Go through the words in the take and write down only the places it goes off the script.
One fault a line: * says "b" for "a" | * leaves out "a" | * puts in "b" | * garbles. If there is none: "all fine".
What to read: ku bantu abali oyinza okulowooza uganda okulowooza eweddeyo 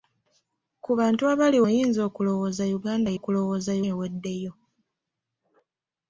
all fine